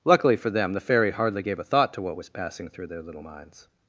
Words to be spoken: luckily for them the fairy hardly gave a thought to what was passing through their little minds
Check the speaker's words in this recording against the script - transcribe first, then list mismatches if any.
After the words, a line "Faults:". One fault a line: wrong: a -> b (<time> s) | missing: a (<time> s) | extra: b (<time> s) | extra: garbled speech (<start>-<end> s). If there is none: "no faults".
luckily for them the fairy hardly gave a thought to what was passing through their little minds
Faults:
no faults